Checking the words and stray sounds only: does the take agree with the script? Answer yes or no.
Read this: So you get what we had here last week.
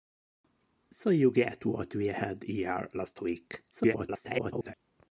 no